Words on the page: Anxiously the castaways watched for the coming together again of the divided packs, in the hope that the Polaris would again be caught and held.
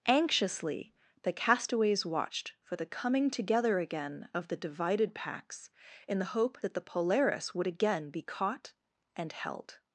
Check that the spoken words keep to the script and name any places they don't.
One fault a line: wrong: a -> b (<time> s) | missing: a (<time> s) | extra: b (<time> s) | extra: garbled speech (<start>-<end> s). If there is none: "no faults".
no faults